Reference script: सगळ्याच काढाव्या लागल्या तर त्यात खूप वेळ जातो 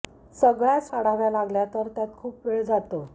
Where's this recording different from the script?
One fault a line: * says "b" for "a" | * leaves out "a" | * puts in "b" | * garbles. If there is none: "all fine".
all fine